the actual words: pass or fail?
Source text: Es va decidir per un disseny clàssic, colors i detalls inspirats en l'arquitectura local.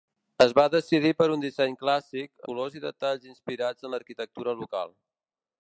pass